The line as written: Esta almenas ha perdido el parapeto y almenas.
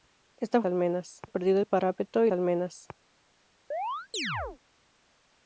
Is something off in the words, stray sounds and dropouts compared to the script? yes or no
yes